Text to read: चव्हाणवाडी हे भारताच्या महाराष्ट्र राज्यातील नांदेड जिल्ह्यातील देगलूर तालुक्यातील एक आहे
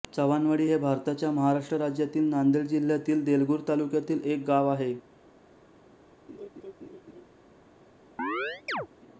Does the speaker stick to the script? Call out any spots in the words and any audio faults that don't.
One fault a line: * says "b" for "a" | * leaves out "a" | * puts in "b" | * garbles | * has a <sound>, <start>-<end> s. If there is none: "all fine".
* puts in "गाव"
* has a laugh, 6.3-7.2 s
* has a chirp, 8.2-8.9 s